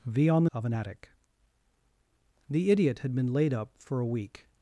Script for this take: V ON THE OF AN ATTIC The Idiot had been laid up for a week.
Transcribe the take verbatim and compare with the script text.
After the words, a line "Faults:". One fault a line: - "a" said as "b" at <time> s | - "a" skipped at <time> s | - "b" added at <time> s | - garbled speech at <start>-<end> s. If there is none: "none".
V ON THE OF AN ATTIC The Idiot had been laid up for a week.
Faults:
none